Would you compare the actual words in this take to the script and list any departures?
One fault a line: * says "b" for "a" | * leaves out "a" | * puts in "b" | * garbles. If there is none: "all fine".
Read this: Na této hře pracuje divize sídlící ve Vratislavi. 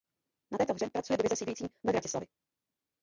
all fine